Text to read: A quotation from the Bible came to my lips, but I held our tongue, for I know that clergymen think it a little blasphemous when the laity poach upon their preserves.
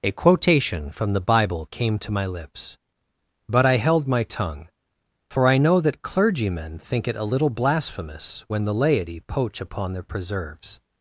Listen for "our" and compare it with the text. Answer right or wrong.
wrong